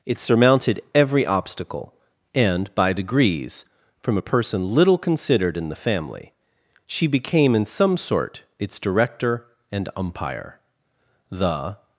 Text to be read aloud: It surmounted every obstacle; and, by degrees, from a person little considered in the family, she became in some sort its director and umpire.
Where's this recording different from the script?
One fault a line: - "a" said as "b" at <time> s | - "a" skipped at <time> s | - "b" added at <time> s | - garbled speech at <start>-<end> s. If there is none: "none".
- "The" added at 11.3 s